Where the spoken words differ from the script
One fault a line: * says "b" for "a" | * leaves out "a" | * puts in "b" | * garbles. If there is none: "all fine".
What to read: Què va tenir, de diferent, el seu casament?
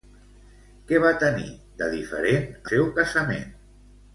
* leaves out "el"